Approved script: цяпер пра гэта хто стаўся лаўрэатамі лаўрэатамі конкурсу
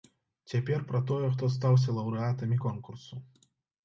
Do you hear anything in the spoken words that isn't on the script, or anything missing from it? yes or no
yes